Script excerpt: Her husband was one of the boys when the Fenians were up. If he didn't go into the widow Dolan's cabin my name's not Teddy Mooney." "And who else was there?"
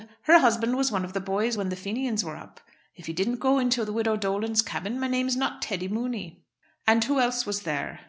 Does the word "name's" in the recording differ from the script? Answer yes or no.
no